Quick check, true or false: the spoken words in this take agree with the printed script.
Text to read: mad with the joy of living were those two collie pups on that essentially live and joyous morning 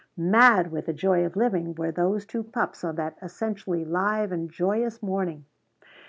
false